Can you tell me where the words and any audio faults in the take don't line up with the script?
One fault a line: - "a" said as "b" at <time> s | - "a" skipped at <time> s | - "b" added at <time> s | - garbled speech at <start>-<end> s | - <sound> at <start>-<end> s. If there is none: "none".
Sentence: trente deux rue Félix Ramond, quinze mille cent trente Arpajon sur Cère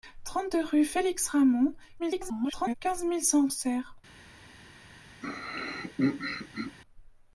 - garbled speech at 2.0-2.7 s
- "trente Arpajon sur" skipped at 3.5 s
- throat clearing at 5.2-6.8 s